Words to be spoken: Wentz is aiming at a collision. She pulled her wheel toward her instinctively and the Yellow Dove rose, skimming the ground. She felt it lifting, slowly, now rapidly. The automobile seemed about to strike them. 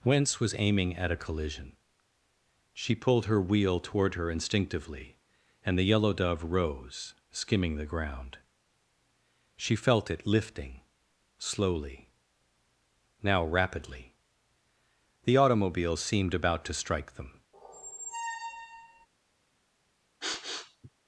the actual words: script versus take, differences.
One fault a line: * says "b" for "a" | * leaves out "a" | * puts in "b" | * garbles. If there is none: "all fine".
* says "was" for "is"